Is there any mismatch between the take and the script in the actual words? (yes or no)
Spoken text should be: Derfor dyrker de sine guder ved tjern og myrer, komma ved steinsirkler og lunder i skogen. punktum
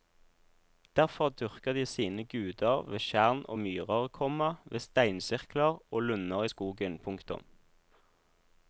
no